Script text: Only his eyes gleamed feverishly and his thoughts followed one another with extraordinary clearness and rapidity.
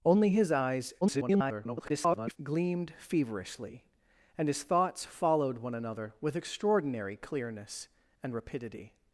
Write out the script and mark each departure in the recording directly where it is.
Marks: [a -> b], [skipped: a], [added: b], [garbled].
Only his eyes [garbled] gleamed feverishly and his thoughts followed one another with extraordinary clearness and rapidity.